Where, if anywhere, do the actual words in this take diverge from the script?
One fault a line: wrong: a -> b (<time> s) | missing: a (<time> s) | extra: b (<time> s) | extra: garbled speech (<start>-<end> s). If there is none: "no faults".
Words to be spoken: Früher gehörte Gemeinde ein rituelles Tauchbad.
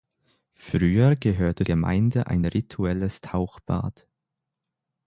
no faults